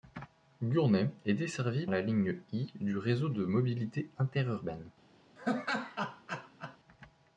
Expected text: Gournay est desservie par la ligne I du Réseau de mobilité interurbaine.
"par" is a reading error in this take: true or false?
true